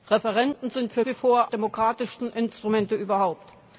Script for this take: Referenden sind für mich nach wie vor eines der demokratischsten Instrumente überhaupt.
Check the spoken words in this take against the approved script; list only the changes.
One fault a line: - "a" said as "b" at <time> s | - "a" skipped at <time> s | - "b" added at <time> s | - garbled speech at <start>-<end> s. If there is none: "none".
- "mich nach" skipped at 1.0 s
- "eines der" skipped at 1.5 s